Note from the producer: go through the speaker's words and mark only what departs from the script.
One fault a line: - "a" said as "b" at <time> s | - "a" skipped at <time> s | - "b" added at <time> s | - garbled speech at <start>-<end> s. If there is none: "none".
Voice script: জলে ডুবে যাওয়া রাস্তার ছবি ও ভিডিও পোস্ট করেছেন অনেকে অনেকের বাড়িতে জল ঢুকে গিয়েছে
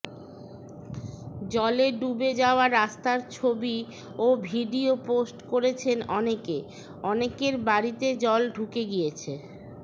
none